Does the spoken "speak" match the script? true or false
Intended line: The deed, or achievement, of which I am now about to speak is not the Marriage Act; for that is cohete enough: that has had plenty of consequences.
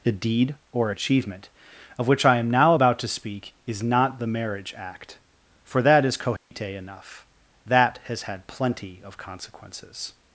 true